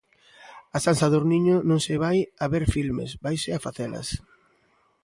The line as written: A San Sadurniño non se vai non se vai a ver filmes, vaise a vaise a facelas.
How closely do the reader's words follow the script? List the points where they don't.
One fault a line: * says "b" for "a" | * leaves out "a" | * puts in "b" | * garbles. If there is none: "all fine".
* leaves out "non se vai"
* leaves out "vaise a"